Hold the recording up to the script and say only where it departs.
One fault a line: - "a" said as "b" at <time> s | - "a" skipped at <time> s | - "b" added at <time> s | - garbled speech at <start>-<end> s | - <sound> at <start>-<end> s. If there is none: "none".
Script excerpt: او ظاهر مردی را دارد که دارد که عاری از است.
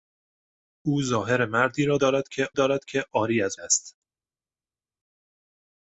none